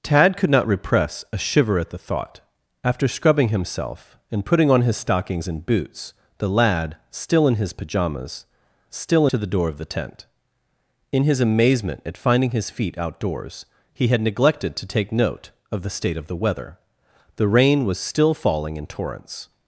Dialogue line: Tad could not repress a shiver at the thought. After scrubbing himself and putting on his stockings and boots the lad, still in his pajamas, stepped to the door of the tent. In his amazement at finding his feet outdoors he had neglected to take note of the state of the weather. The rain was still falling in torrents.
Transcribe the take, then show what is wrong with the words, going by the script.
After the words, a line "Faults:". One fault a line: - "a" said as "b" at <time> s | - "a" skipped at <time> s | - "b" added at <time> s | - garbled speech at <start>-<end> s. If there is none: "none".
Tad could not repress a shiver at the thought. After scrubbing himself and putting on his stockings and boots the lad, still in his pajamas, still to the door of the tent. In his amazement at finding his feet outdoors he had neglected to take note of the state of the weather. The rain was still falling in torrents.
Faults:
- "stepped" said as "still" at 8.9 s